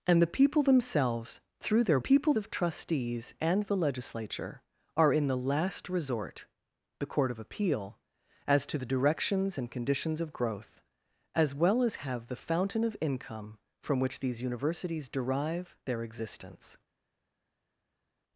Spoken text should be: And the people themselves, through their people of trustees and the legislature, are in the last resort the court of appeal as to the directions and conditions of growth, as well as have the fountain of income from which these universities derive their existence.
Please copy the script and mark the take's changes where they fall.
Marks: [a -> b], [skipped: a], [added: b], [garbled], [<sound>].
And the people themselves, through their people of trustees and the legislature, are in the last resort the court of appeal as to the directions and conditions of growth, as well as have the fountain of income from which these universities derive their existence.